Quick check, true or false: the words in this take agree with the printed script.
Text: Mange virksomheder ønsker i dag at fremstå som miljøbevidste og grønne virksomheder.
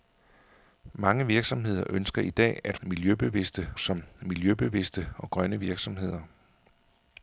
false